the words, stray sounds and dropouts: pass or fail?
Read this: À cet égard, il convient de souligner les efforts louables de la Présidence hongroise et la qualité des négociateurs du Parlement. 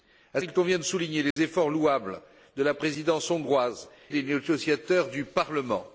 fail